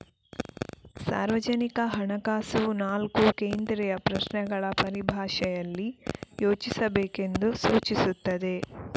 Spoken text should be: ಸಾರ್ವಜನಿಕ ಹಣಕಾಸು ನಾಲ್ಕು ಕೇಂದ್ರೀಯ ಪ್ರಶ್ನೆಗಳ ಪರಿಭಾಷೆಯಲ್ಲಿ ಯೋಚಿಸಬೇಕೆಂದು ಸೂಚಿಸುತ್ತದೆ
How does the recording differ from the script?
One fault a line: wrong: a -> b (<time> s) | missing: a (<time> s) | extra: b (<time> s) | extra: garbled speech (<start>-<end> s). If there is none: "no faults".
no faults